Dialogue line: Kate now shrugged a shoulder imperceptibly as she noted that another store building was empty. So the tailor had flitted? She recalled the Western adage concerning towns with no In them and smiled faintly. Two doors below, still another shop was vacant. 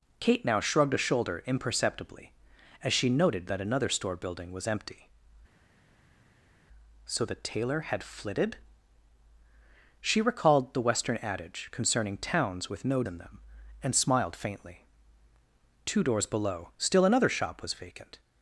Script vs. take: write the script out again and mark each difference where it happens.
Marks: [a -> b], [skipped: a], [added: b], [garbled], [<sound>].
Kate now shrugged a shoulder imperceptibly as she noted that another store building was empty. So the tailor had flitted? She recalled the Western adage concerning towns with no In them and smiled faintly. Two doors below, still another shop was vacant.